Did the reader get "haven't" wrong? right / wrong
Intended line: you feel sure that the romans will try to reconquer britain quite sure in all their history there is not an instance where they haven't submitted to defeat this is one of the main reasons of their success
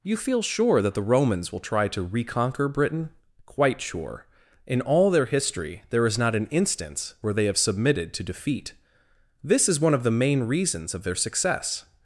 wrong